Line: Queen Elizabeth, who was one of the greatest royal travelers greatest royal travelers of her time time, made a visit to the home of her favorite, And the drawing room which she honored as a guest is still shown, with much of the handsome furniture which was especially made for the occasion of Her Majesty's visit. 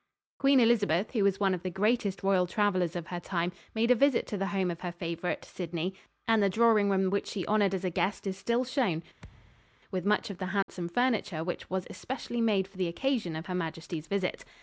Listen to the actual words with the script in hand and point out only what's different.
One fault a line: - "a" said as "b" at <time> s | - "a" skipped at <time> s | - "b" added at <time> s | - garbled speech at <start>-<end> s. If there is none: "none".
- "greatest royal travelers" skipped at 3.0 s
- "time" skipped at 3.5 s
- "Sidney" added at 5.5 s